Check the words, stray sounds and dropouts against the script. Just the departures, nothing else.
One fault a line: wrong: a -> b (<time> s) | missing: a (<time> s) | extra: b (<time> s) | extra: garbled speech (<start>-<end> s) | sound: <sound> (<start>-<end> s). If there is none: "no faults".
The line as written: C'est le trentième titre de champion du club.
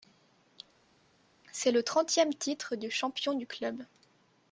no faults